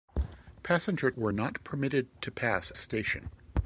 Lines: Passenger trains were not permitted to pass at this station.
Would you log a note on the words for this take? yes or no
yes